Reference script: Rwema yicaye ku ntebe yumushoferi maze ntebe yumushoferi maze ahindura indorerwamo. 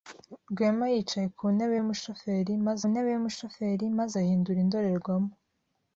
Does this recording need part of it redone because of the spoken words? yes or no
no